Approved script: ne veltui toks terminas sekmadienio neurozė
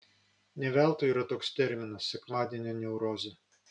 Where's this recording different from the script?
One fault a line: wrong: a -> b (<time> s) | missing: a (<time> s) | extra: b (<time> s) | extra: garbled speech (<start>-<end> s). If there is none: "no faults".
extra: yra (1.1 s)